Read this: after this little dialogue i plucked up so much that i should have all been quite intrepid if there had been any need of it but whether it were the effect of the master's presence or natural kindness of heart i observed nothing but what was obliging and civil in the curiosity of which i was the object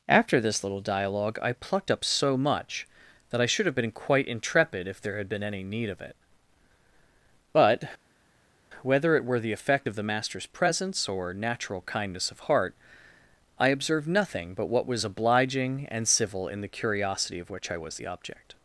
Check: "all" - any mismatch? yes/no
yes